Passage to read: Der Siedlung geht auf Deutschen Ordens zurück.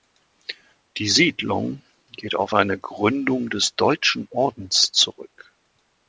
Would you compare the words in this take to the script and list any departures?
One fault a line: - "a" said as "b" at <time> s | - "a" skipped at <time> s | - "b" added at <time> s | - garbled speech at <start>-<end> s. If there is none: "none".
- "Der" said as "Die" at 1.0 s
- "eine Gründung des" added at 2.5 s